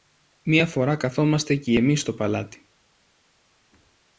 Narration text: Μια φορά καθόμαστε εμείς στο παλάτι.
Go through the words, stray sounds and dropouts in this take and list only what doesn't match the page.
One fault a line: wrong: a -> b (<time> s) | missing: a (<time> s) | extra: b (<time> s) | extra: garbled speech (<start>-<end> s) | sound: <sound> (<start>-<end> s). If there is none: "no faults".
extra: κι (1.6 s)